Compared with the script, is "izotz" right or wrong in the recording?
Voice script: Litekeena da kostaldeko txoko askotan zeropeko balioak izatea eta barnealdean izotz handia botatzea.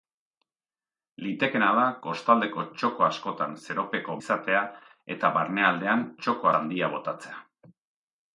wrong